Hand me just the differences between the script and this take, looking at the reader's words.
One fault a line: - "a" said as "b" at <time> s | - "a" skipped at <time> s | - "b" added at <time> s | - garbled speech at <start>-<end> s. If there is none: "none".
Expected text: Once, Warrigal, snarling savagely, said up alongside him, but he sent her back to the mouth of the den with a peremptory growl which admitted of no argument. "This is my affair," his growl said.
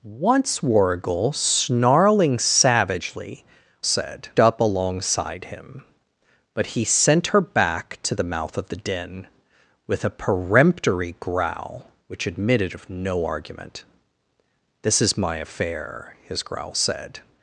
none